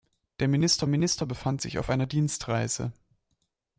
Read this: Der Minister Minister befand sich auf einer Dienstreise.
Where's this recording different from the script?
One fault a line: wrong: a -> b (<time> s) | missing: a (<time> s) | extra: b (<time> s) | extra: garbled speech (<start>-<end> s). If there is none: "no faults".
no faults